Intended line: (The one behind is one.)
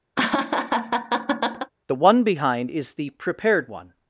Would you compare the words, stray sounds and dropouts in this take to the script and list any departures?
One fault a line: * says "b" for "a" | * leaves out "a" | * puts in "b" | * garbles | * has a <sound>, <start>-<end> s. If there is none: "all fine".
* has a laugh, 0.2-1.7 s
* puts in "the prepared"